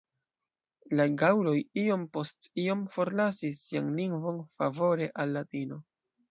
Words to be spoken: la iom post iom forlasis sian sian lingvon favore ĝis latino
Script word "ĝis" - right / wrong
wrong